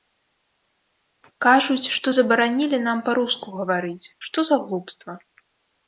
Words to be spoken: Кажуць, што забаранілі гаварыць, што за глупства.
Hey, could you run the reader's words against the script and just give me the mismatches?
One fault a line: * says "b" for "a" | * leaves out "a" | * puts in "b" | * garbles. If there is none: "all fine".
* puts in "нам па руску"